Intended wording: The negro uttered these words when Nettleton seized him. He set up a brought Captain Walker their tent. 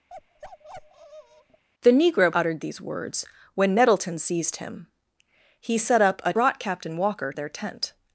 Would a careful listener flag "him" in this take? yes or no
no